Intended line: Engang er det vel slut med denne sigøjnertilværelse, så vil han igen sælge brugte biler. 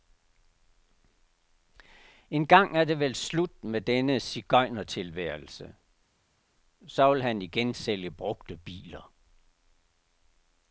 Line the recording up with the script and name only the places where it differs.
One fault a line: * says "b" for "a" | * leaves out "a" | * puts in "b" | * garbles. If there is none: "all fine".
all fine